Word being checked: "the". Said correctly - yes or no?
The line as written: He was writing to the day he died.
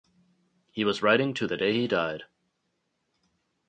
yes